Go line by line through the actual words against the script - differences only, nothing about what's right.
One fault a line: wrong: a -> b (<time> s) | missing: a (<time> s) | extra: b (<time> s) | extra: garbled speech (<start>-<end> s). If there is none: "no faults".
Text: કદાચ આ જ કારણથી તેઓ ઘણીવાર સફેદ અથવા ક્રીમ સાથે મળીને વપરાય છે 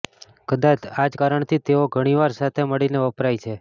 missing: સફેદ અથવા ક્રીમ (2.3 s)